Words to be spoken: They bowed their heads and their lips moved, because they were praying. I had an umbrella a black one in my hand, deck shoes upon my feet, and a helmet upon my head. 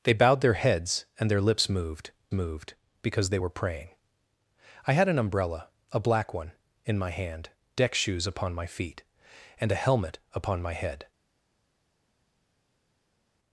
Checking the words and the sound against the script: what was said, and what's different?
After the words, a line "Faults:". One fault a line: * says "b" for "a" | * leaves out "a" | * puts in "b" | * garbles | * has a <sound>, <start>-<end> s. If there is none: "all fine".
They bowed their heads and their lips moved moved, because they were praying. I had an umbrella a black one in my hand, deck shoes upon my feet, and a helmet upon my head.
Faults:
* puts in "moved"